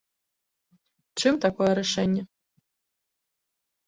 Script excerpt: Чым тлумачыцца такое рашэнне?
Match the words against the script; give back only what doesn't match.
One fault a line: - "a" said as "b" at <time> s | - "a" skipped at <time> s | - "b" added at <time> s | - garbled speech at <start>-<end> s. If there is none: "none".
- "тлумачыцца" skipped at 1.3 s